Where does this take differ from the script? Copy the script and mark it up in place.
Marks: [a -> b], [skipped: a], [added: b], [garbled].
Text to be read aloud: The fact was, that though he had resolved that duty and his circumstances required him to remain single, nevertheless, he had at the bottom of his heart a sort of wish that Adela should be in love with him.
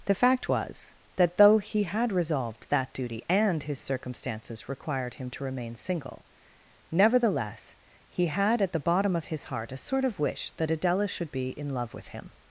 The fact was, that though he had resolved that duty and his circumstances required him to remain single, nevertheless, he had at the bottom of his heart a sort of wish that Adela should be in love with him.